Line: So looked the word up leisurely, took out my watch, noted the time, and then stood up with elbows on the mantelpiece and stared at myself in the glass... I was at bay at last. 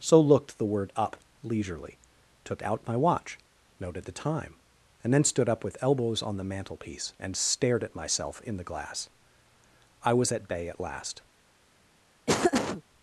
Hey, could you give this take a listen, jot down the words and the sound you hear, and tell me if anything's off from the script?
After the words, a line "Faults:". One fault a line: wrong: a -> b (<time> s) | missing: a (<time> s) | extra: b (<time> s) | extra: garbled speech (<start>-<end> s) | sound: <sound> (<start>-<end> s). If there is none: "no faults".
So looked the word up leisurely, took out my watch, noted the time, and then stood up with elbows on the mantelpiece and stared at myself in the glass... I was at bay at last.
Faults:
sound: laugh (12.3-12.8 s)